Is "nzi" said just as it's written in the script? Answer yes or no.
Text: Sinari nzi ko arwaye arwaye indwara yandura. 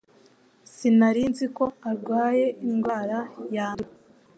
yes